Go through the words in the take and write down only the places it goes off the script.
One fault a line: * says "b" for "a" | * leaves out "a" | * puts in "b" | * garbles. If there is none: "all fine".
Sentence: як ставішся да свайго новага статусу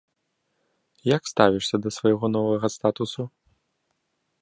all fine